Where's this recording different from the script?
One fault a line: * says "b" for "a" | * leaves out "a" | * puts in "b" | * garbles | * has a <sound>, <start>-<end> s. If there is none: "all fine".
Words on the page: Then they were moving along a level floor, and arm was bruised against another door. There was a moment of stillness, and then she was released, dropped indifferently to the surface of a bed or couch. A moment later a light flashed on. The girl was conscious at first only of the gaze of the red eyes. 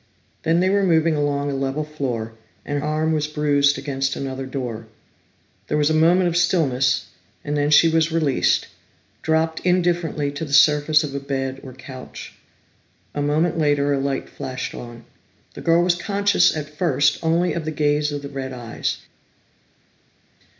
all fine